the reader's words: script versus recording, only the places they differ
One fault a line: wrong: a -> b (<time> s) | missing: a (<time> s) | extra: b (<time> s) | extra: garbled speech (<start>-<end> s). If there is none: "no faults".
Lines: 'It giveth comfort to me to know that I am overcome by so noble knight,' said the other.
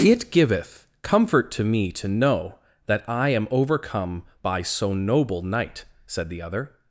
no faults